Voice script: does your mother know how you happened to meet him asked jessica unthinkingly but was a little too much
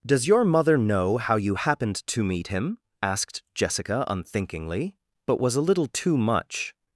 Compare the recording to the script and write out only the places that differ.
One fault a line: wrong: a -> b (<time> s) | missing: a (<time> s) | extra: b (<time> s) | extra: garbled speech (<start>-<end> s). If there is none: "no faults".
no faults